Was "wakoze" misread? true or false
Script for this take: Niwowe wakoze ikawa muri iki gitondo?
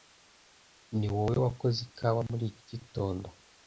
false